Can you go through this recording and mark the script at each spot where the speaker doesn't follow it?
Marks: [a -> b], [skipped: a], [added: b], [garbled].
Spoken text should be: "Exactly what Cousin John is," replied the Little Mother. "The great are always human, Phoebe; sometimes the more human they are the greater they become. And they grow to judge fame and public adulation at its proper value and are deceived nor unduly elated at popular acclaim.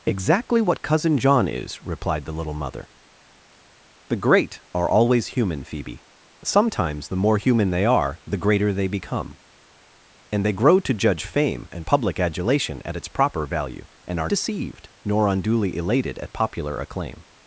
"Exactly what Cousin John is," replied the Little Mother. "The great are always human, Phoebe; sometimes the more human they are the greater they become. And they grow to judge fame and public adulation at its proper value and are deceived nor unduly elated at popular acclaim.